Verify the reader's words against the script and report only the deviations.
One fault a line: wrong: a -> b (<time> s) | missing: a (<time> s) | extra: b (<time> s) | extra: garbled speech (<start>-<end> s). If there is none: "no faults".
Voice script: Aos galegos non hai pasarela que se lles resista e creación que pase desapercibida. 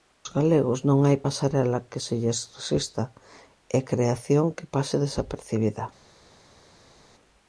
no faults